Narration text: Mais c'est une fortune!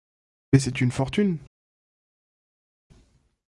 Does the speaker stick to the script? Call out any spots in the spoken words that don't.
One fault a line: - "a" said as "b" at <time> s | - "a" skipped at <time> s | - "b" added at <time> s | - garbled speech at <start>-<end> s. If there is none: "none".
none